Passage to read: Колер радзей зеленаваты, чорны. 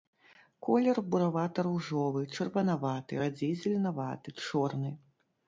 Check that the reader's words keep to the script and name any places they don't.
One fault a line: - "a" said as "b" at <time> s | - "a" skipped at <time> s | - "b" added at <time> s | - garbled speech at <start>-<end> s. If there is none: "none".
- "буравата ружовы чырванаваты" added at 1.1 s